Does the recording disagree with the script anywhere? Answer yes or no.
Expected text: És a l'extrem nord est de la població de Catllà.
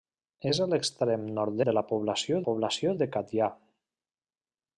yes